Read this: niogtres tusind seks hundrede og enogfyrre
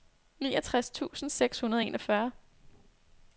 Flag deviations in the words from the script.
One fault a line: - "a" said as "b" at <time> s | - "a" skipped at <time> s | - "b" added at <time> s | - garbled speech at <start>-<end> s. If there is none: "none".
none